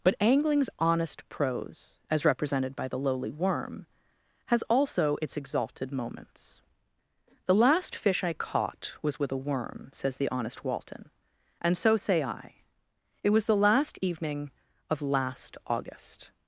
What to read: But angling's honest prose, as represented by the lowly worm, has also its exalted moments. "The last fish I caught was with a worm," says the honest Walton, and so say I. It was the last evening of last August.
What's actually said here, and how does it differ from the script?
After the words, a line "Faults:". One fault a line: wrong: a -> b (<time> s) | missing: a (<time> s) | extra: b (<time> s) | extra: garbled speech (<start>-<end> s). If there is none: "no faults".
But angling's honest prose, as represented by the lowly worm, has also its exalted moments. "The last fish I caught was with a worm," says the honest Walton, and so say I. It was the last evening of last August.
Faults:
no faults